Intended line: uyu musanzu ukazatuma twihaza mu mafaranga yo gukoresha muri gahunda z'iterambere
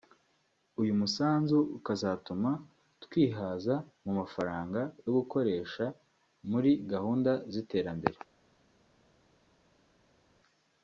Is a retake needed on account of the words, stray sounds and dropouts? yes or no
no